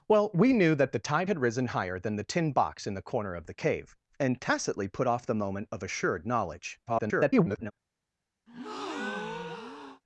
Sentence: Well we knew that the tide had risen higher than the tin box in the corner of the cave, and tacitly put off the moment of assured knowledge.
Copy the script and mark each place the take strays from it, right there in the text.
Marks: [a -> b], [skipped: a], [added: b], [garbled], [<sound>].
Well we knew that the tide had risen higher than the tin box in the corner of the cave, and tacitly put off the moment of assured knowledge. [garbled] [breath]